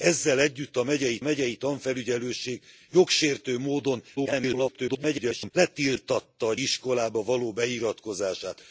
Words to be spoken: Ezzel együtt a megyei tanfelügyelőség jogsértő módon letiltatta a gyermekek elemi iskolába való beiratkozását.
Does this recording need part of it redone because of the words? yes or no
yes